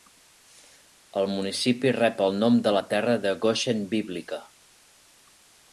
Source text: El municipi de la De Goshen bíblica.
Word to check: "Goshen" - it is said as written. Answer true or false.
true